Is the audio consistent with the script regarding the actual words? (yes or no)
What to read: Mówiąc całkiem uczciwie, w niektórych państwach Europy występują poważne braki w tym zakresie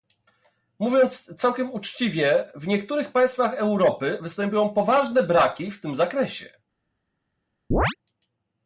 yes